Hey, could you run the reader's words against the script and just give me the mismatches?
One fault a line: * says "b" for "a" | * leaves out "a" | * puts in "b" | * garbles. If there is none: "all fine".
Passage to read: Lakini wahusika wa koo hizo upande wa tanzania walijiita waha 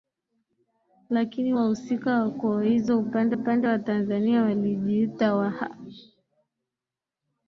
* puts in "upande"